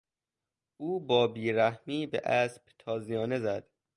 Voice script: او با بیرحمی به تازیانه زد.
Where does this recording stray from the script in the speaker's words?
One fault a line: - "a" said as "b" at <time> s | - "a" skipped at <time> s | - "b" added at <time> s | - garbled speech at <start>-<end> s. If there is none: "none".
- "اسب" added at 2.2 s